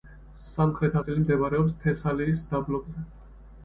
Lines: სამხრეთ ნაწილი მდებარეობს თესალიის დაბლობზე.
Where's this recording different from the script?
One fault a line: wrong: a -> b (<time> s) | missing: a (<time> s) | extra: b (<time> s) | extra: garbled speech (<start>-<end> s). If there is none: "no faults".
no faults